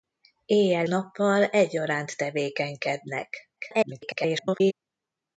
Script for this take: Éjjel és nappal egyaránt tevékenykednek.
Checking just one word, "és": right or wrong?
wrong